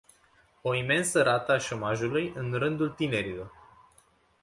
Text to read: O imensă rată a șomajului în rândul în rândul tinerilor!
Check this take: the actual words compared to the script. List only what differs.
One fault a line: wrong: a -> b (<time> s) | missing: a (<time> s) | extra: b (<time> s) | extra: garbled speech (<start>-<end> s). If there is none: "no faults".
missing: în rândul (2.9 s)